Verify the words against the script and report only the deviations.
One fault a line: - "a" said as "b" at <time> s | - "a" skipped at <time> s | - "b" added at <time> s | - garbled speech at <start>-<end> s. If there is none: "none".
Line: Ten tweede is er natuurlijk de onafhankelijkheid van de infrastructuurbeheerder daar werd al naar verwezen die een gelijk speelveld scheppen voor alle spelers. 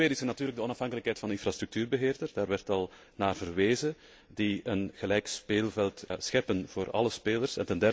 none